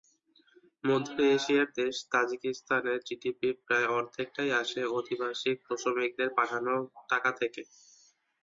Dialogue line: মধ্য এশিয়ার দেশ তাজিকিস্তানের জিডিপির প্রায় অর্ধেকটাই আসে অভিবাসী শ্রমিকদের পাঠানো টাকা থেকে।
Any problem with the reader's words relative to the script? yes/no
no